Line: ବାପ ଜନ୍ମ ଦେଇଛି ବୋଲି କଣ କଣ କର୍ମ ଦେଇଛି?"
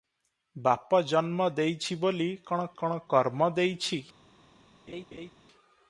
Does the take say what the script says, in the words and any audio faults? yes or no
no